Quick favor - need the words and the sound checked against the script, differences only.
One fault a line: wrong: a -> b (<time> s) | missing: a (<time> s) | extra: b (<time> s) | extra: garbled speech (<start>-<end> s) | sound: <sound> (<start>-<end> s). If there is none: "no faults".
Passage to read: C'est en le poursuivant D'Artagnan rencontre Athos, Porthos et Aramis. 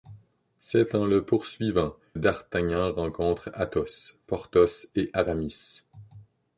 no faults